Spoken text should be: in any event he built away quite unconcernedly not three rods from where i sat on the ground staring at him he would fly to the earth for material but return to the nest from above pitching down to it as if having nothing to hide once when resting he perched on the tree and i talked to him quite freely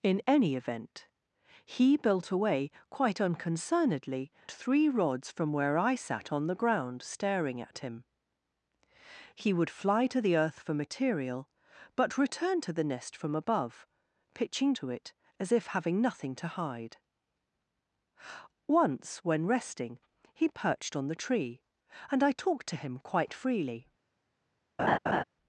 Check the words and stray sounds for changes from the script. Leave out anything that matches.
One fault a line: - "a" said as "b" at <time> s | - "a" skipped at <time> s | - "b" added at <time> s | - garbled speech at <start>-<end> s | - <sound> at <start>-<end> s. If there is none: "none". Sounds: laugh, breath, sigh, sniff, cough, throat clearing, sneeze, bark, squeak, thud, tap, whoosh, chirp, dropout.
- "not" skipped at 4.3 s
- "down" skipped at 14.7 s
- laugh at 24.8-25.2 s